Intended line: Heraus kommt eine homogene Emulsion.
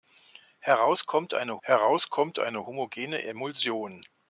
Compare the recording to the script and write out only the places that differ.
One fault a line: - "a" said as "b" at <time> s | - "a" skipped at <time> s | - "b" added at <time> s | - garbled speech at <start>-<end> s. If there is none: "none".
- "heraus kommt eine" added at 1.6 s